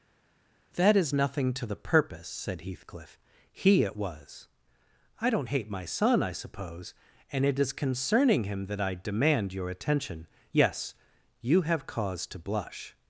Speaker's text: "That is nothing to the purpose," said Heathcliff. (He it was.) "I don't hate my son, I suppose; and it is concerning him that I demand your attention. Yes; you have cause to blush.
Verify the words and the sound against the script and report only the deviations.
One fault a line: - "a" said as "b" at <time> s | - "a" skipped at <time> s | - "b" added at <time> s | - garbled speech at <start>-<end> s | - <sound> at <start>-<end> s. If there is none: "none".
none